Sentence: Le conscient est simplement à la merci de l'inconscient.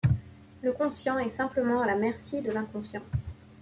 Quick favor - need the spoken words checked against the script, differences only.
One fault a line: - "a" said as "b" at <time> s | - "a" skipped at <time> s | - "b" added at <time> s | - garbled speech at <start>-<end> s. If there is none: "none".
none